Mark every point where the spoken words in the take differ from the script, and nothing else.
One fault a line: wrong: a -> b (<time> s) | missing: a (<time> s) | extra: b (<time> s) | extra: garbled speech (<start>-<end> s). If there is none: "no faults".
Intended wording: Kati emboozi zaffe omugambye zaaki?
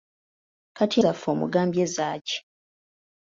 missing: emboozi (1.0 s)